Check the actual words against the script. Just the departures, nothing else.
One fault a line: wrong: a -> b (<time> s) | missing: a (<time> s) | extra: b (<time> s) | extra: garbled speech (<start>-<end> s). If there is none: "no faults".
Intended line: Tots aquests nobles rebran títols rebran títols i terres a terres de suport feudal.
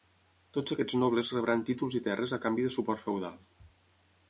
missing: rebran títols (2.0 s)
wrong: terres -> canvi (2.5 s)